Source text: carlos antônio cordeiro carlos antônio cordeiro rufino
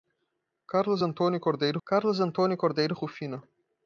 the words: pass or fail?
pass